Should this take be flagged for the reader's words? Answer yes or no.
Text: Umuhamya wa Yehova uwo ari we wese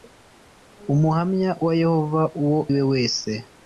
yes